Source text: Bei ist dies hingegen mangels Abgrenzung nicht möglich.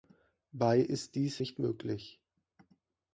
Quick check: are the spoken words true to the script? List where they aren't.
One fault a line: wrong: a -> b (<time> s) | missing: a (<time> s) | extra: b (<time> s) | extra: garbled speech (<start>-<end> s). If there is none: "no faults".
missing: hingegen mangels Abgrenzung (1.4 s)